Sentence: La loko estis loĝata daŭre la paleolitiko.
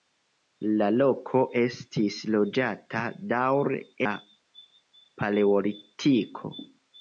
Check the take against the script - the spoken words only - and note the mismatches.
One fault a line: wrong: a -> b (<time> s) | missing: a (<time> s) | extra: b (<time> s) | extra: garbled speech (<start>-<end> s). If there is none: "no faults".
no faults